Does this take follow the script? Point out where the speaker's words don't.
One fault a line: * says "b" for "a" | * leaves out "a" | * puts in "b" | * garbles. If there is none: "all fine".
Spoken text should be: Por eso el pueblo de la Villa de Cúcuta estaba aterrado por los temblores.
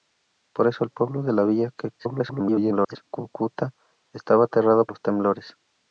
* garbles
* leaves out "por"